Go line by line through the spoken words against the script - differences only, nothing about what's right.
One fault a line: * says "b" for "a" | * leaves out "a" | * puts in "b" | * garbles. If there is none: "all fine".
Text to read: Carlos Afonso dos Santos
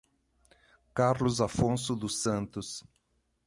all fine